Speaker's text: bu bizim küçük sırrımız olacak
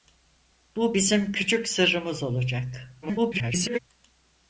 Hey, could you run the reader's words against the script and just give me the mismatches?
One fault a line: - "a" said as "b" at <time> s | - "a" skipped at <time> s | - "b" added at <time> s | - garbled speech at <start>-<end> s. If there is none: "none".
- garbled speech at 3.0-3.8 s